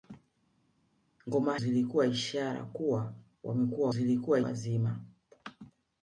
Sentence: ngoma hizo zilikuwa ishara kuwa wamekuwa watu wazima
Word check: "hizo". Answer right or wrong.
wrong